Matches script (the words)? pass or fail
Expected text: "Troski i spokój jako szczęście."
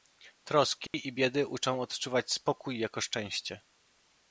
fail